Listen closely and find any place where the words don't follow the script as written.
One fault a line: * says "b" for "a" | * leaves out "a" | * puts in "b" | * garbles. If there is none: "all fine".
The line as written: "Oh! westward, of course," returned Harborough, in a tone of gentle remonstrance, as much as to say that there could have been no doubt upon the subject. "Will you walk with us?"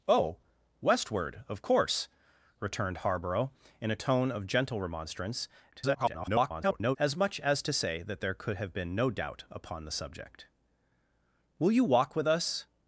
* garbles